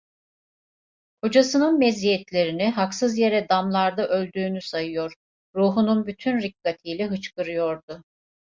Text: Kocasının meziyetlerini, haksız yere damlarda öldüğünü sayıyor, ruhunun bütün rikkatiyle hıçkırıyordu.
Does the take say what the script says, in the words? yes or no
yes